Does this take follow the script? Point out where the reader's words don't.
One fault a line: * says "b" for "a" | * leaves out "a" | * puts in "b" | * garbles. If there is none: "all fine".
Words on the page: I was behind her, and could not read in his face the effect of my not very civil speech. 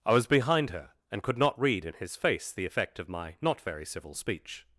all fine